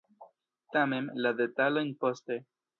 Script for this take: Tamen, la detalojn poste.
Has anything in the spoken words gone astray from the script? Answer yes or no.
no